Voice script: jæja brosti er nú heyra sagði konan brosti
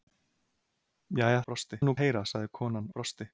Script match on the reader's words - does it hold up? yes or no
yes